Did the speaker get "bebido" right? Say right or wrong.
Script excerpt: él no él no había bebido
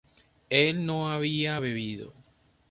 right